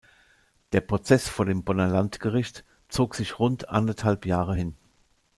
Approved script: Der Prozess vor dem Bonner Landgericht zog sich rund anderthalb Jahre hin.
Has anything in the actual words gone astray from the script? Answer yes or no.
no